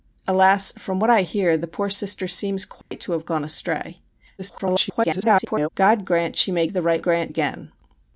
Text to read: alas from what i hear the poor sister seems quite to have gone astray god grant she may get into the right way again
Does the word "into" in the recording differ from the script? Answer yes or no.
yes